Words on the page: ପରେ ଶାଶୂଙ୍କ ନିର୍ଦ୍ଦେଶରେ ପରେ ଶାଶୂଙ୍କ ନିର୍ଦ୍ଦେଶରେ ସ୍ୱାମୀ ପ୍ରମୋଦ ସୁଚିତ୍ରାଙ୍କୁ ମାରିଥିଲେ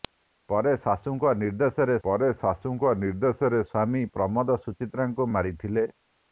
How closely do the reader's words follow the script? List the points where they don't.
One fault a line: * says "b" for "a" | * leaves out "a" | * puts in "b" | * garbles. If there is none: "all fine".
all fine